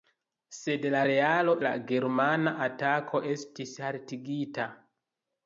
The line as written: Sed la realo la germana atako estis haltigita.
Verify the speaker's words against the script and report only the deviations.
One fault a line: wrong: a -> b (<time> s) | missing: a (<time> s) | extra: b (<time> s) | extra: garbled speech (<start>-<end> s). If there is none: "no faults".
no faults